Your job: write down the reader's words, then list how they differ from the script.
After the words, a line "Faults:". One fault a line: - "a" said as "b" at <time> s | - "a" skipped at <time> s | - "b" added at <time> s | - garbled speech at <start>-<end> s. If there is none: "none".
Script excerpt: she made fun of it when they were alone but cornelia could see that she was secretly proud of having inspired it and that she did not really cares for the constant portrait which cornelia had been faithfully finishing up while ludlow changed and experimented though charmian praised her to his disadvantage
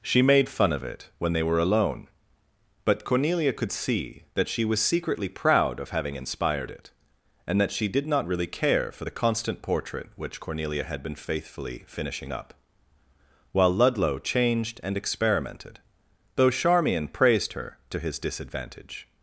she made fun of it when they were alone but cornelia could see that she was secretly proud of having inspired it and that she did not really care for the constant portrait which cornelia had been faithfully finishing up while ludlow changed and experimented though charmian praised her to his disadvantage
Faults:
- "cares" said as "care" at 8.5 s